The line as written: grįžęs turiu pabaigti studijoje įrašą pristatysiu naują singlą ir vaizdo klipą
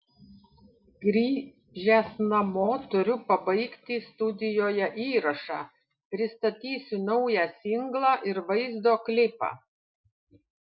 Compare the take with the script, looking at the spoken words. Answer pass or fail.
fail